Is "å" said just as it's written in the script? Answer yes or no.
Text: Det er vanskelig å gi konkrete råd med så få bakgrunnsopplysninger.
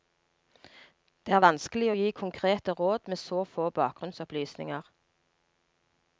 yes